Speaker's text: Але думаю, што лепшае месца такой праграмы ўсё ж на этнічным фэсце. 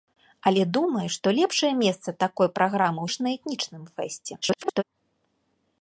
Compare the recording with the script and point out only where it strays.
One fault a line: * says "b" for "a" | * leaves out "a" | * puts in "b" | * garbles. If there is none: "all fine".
* leaves out "ўсё"
* garbles